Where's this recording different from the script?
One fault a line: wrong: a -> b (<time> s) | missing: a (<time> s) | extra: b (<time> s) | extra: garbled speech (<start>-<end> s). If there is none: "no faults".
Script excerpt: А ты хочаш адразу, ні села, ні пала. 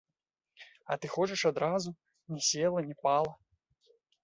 no faults